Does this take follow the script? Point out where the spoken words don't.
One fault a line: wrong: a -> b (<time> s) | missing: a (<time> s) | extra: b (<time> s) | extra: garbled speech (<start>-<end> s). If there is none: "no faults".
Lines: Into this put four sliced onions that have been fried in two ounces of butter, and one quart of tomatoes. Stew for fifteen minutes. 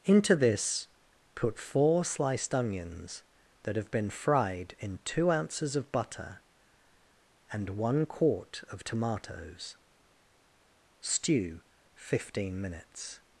missing: for (11.6 s)